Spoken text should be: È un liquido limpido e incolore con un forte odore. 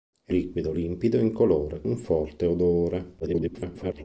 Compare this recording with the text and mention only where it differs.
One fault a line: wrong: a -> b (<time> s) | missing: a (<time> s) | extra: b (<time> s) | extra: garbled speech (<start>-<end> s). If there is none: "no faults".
missing: un (0.3 s)
missing: con (1.8 s)
extra: garbled speech (3.2-4.0 s)